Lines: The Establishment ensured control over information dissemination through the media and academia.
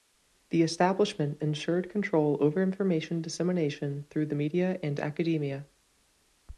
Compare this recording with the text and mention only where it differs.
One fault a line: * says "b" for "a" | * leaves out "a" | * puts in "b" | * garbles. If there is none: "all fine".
all fine